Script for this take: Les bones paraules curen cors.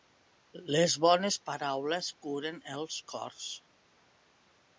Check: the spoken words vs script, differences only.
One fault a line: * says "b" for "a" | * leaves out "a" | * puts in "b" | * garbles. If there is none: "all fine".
* puts in "els"